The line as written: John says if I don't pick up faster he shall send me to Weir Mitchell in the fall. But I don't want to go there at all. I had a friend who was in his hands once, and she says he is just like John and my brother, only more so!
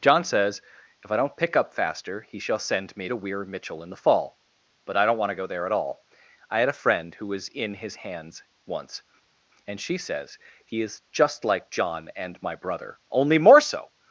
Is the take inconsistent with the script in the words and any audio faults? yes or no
no